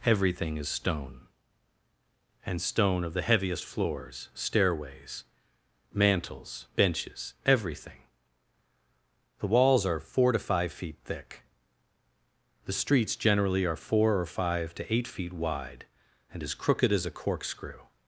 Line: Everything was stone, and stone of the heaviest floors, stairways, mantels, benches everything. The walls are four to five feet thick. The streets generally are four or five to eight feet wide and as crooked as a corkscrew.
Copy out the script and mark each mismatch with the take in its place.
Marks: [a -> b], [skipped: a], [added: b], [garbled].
Everything [was -> is] stone, and stone of the heaviest floors, stairways, mantels, benches everything. The walls are four to five feet thick. The streets generally are four or five to eight feet wide and as crooked as a corkscrew.